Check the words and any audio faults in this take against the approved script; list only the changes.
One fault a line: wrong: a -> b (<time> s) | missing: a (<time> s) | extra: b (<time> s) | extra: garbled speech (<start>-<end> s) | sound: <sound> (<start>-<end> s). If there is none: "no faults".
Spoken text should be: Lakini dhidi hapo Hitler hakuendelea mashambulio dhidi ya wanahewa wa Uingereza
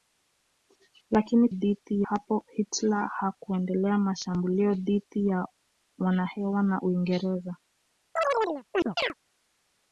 sound: chirp (8.2-9.1 s)